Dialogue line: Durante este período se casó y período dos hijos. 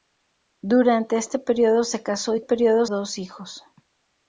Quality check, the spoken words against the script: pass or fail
pass